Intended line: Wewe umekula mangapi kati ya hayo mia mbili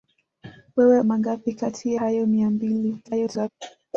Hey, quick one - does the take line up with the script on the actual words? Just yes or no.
no